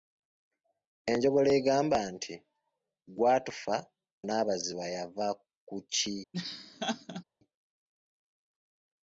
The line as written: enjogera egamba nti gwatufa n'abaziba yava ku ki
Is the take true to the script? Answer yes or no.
yes